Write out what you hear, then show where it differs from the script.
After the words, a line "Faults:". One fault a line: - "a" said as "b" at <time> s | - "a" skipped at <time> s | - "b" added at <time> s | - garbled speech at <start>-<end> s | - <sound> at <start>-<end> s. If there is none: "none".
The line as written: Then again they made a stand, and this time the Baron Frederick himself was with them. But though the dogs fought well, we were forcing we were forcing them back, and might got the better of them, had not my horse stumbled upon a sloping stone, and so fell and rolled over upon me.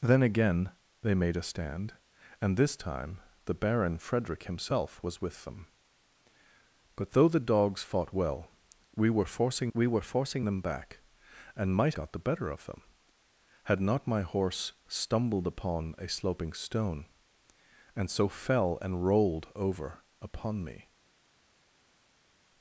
Then again they made a stand, and this time the Baron Frederick himself was with them. But though the dogs fought well, we were forcing we were forcing them back, and might got the better of them, had not my horse stumbled upon a sloping stone, and so fell and rolled over upon me.
Faults:
none